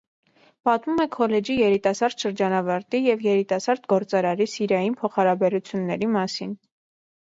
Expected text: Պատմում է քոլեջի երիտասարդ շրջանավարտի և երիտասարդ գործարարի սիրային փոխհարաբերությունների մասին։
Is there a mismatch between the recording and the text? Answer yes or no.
no